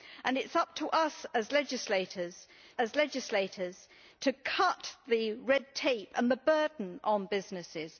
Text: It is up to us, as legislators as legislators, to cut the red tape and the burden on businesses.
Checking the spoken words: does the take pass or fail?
pass